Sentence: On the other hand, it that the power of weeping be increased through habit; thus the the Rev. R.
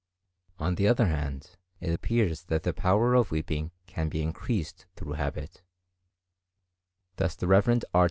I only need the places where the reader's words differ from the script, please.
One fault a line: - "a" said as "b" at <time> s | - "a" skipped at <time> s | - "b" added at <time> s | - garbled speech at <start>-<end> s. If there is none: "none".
- "appears" added at 1.9 s
- "can" added at 3.9 s
- "the" skipped at 7.5 s